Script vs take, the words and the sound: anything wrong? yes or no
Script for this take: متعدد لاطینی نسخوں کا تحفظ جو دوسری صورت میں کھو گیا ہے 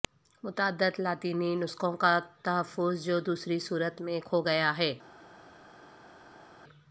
no